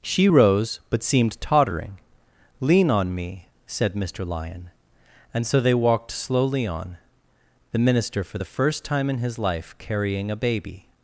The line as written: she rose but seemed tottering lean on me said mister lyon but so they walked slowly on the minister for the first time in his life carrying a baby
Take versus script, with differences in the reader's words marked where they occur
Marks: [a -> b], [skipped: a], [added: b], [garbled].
she rose but seemed tottering lean on me said mister lyon [but -> and] so they walked slowly on the minister for the first time in his life carrying a baby